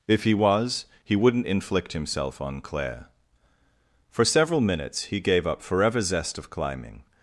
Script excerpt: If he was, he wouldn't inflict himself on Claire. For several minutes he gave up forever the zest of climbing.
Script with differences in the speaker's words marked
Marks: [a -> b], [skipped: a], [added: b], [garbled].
If he was, he wouldn't inflict himself on Claire. For several minutes he gave up forever [skipped: the] zest of climbing.